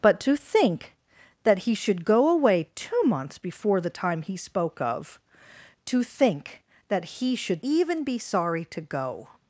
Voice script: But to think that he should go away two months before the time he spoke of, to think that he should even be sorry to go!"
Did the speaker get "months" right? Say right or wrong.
right